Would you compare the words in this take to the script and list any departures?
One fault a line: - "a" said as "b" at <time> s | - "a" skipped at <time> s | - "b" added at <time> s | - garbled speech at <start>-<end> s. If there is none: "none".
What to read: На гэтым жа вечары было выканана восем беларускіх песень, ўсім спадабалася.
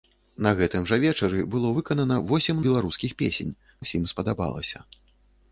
none